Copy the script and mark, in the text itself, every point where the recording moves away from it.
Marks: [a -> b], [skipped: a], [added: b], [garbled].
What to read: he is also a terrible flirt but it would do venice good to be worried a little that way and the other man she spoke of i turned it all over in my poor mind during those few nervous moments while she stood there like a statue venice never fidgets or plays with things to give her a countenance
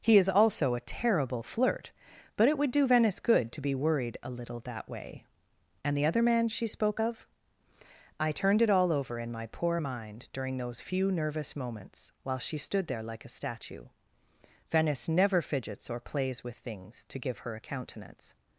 he is also a terrible flirt but it would do venice good to be worried a little that way and the other man she spoke of i turned it all over in my poor mind during those few nervous moments while she stood there like a statue venice never fidgets or plays with things to give her a countenance